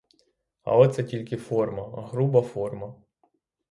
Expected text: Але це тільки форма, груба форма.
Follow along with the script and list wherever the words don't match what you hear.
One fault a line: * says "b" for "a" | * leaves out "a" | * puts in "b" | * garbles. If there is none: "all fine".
all fine